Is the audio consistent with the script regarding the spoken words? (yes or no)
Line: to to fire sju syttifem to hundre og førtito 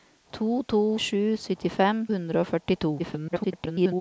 no